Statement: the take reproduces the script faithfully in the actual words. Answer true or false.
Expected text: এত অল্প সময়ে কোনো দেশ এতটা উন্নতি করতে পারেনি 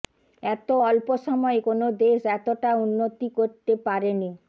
true